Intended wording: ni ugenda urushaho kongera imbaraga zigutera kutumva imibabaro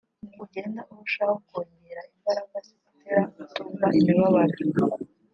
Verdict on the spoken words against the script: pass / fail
pass